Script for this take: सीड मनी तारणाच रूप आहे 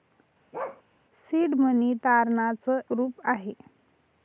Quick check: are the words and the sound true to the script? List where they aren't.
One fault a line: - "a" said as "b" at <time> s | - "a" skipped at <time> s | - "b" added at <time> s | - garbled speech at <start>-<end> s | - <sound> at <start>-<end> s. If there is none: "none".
- bark at 0.5-0.8 s